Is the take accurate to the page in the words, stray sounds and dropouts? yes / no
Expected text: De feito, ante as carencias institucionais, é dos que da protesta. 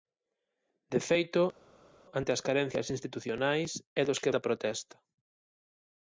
yes